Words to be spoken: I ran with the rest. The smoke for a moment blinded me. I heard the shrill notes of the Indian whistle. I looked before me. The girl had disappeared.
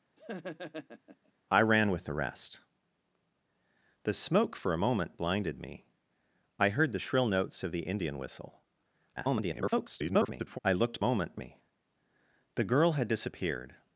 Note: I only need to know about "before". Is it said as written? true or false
false